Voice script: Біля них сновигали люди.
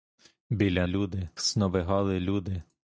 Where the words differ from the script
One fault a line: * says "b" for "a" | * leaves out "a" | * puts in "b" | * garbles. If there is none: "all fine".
* says "люди" for "них"